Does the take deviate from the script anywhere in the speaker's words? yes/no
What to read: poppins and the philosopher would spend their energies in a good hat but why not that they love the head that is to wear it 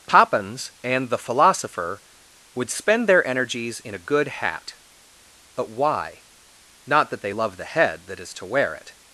no